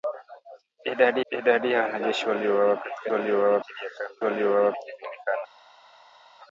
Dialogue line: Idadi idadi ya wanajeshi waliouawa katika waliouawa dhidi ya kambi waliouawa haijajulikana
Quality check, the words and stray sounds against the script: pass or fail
pass